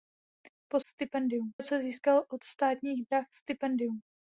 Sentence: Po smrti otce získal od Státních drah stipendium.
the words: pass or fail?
fail